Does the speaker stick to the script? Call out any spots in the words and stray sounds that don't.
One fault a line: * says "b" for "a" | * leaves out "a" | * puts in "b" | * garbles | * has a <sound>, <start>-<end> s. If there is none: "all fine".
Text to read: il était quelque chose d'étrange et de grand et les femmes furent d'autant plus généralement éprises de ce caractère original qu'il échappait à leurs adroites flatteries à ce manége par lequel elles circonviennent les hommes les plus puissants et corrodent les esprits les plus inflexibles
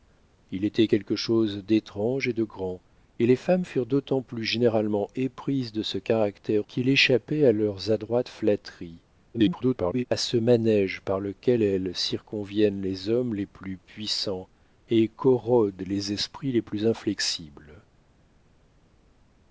* leaves out "original"
* garbles